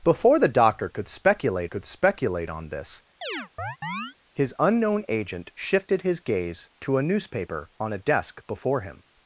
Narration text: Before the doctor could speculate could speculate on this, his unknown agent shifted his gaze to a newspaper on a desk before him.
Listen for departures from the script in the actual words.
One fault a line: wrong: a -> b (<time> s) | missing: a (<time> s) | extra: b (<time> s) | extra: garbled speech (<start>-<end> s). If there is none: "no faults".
no faults